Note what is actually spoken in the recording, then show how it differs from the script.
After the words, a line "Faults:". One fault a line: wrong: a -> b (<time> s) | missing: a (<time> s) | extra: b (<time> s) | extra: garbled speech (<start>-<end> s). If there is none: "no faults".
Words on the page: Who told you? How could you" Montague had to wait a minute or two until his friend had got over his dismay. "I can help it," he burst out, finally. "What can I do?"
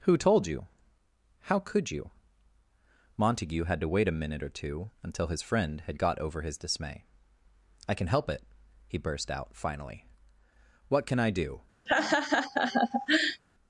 Who told you? How could you" Montague had to wait a minute or two until his friend had got over his dismay. "I can help it," he burst out, finally. "What can I do?"
Faults:
no faults